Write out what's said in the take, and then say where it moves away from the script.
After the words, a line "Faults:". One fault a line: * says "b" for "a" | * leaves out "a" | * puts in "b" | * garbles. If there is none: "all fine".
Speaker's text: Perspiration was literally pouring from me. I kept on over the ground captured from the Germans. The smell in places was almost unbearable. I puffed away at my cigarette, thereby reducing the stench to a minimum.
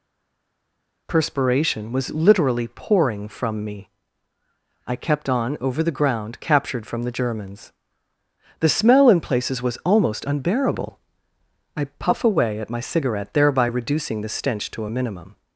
Perspiration was literally pouring from me. I kept on over the ground captured from the Germans. The smell in places was almost unbearable. I puff away at my cigarette, thereby reducing the stench to a minimum.
Faults:
* says "puff" for "puffed"